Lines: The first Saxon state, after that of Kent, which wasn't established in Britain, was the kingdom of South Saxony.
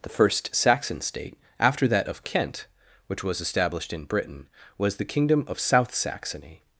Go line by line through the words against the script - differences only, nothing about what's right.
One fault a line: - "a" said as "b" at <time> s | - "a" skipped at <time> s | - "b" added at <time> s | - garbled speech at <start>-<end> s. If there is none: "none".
- "wasn't" said as "was" at 3.2 s